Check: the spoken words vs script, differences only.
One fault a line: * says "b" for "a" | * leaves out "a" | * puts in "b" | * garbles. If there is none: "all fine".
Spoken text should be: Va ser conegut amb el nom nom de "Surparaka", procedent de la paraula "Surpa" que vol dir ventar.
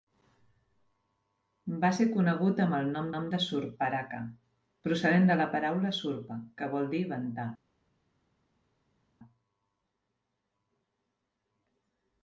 all fine